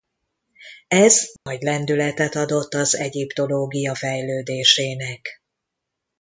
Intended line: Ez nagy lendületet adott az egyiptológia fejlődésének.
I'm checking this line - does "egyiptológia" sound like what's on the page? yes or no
yes